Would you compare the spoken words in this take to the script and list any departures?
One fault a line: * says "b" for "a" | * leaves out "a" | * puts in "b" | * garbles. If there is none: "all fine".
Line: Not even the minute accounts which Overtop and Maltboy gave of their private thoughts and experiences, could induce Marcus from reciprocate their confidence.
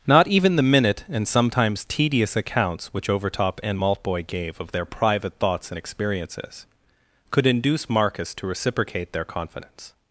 * puts in "and sometimes tedious"
* says "to" for "from"